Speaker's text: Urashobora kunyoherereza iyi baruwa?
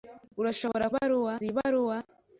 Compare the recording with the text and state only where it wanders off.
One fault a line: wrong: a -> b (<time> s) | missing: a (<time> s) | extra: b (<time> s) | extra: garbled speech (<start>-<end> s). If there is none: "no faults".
wrong: kunyoherereza -> baruwa (1.0 s)